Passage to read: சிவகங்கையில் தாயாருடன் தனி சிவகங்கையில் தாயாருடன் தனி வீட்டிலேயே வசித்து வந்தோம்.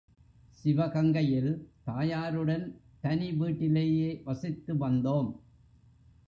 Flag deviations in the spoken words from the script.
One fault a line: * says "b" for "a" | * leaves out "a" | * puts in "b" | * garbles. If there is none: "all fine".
* leaves out "சிவகங்கையில் தாயாருடன் தனி"